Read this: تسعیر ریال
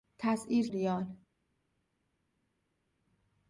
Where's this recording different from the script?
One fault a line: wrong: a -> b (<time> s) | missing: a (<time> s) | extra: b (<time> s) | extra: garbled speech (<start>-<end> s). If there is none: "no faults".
no faults